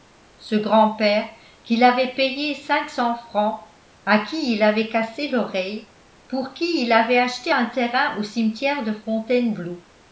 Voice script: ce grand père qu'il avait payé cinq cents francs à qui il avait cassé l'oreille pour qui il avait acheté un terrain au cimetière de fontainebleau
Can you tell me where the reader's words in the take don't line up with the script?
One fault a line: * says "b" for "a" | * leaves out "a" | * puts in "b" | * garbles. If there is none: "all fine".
all fine